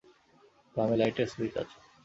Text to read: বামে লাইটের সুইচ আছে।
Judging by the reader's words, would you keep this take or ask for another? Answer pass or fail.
pass